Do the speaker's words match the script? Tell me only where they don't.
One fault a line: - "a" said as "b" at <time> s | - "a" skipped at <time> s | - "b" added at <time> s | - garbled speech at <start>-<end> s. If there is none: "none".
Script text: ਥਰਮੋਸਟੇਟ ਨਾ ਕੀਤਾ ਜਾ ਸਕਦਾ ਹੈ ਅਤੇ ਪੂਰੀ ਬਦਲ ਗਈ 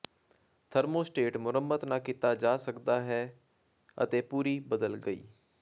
- "ਮੁਰੰਮਤ" added at 1.4 s